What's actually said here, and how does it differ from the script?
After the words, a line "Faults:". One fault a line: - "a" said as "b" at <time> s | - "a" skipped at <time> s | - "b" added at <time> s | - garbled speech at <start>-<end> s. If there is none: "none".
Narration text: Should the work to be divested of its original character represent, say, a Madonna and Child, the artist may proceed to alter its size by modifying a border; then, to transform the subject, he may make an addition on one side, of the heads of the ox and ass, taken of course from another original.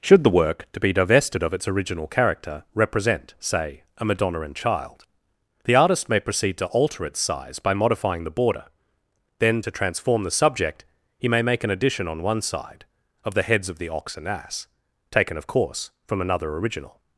Should the work to be divested of its original character represent, say, a Madonna and Child, the artist may proceed to alter its size by modifying the border; then, to transform the subject, he may make an addition on one side, of the heads of the ox and ass, taken of course from another original.
Faults:
- "a" said as "the" at 8.2 s